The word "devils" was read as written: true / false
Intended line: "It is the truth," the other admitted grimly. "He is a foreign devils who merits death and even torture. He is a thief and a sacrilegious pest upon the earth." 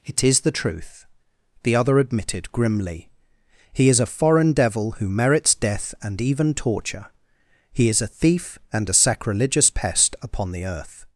false